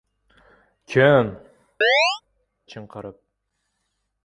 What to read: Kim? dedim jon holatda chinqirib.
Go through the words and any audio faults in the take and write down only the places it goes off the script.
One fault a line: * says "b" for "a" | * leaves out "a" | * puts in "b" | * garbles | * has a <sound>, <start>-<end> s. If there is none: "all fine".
* leaves out "dedim jon holatda"
* has a chirp, 1.8-2.2 s